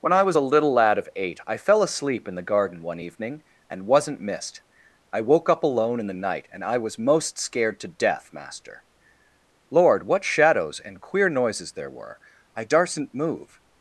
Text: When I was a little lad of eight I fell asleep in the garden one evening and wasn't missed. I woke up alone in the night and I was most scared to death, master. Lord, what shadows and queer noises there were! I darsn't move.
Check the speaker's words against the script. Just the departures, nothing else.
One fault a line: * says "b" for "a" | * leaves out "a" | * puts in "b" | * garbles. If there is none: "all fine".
all fine